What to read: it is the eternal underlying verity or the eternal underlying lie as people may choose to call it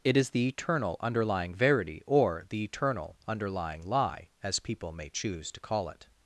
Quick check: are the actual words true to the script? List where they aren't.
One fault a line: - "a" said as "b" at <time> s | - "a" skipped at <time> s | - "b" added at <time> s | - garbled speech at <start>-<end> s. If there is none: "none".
none